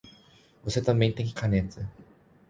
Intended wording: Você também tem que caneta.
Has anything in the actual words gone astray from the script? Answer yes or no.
no